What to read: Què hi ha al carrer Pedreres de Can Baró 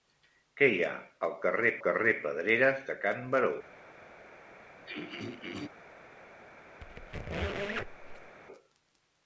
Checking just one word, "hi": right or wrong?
right